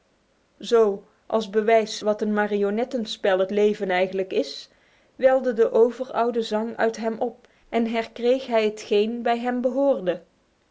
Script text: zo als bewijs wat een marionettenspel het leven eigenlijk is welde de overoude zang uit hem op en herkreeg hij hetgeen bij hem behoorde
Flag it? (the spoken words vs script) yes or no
no